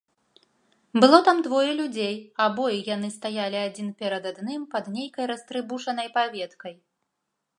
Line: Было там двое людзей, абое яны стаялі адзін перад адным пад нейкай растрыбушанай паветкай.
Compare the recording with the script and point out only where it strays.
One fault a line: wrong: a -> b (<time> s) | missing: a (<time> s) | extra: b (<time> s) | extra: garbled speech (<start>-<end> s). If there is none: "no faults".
no faults